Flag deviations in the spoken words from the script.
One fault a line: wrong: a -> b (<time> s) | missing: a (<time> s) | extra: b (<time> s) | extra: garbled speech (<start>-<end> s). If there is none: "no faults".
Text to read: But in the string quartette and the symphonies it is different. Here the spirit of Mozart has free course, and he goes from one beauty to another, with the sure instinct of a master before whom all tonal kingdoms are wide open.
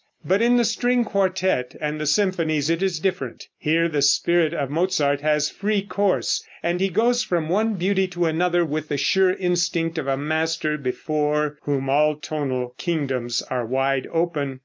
no faults